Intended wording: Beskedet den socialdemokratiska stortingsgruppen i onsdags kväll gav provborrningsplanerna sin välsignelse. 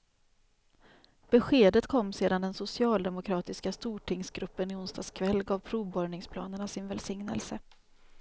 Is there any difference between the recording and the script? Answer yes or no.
yes